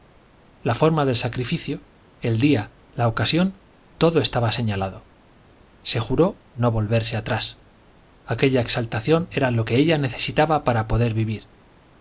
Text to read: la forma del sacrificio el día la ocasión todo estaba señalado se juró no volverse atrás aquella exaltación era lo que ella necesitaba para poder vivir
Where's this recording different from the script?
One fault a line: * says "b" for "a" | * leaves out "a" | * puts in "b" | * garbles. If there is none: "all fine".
all fine